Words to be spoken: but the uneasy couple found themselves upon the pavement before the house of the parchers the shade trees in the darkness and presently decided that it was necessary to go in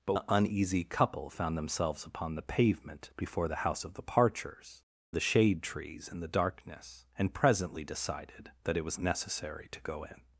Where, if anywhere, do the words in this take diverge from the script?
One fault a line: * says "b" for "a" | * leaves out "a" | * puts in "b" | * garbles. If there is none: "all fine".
all fine